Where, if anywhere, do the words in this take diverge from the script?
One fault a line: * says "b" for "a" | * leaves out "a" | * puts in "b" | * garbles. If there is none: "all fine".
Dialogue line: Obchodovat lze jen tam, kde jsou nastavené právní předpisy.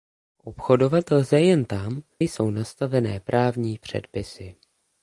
* leaves out "kde"